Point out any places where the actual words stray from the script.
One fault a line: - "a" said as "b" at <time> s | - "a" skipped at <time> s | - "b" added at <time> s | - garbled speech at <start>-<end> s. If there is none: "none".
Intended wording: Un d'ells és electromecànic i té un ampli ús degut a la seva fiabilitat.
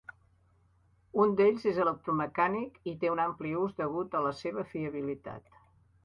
none